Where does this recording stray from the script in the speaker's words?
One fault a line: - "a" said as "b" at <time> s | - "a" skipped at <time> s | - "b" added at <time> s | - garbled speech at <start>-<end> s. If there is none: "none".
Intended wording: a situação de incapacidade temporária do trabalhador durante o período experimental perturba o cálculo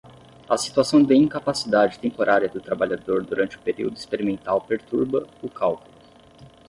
none